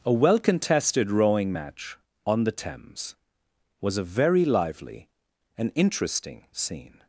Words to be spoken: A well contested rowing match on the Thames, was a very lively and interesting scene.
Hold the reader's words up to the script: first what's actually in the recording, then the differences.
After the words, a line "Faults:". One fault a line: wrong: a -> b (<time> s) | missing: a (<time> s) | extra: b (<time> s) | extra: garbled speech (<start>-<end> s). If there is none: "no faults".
A well contested rowing match on the Thames, was a very lively and interesting scene.
Faults:
no faults